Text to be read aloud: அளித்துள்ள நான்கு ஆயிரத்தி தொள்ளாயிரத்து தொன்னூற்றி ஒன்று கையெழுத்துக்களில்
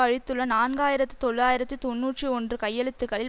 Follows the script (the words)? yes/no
yes